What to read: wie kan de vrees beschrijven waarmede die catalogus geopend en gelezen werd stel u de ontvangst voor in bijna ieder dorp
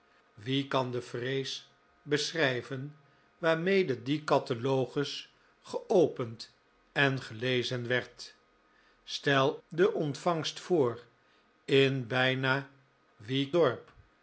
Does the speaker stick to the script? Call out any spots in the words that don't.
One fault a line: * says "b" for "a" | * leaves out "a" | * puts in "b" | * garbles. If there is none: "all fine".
* leaves out "u"
* says "wie" for "ieder"